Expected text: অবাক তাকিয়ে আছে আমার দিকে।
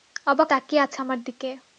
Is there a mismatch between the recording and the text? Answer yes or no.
no